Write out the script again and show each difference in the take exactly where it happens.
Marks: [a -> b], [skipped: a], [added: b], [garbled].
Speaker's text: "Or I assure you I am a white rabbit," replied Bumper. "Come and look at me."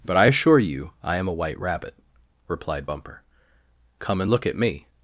["Or -> But] I assure you I am a white rabbit," replied Bumper. "Come and look at me."